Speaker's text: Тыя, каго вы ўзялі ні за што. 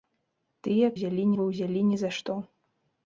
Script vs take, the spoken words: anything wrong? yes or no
yes